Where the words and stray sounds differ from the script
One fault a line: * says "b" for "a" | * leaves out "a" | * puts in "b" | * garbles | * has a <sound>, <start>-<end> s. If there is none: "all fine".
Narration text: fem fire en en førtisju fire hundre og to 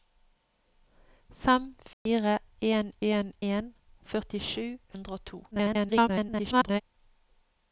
* has a dropout, 1.9-2.1 s
* puts in "en"
* leaves out "fire"
* garbles